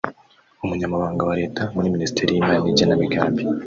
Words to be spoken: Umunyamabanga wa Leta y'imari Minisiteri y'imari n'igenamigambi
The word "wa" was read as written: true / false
true